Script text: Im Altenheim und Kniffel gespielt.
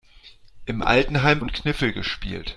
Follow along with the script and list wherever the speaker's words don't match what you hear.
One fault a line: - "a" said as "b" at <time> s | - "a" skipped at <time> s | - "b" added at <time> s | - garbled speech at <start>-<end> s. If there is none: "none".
none